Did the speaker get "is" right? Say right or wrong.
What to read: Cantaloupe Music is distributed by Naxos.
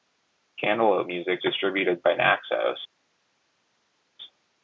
wrong